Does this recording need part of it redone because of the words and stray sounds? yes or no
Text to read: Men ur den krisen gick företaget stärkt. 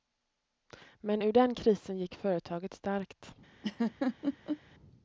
yes